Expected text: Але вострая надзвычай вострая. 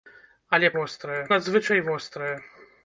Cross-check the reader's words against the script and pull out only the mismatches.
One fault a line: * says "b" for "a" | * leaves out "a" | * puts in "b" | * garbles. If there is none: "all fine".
all fine